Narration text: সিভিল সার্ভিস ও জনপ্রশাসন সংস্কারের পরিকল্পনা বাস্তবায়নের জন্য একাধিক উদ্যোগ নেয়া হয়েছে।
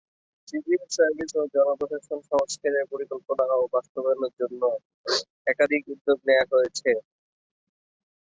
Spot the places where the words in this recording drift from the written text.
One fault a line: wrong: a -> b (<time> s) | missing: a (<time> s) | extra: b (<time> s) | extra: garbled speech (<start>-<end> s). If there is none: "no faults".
extra: ও (3.5 s)